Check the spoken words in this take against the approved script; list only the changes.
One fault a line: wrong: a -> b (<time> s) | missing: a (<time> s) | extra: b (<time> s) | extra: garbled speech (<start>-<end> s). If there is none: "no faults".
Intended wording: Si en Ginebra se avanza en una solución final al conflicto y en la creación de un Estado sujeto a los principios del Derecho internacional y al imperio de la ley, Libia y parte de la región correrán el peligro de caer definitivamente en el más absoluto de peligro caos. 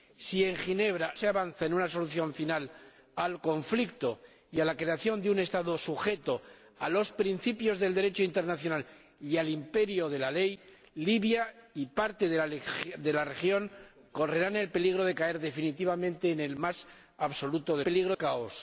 no faults